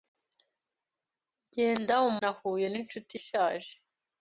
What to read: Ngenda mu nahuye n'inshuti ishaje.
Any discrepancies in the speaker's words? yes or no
no